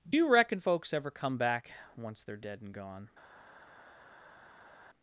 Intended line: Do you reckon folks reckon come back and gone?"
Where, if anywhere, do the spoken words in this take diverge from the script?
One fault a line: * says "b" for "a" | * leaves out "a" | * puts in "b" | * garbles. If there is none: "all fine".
* says "ever" for "reckon"
* puts in "once they're dead"